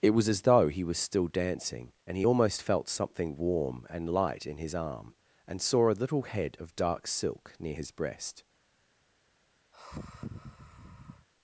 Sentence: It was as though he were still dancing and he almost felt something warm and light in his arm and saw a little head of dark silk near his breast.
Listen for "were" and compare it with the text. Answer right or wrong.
wrong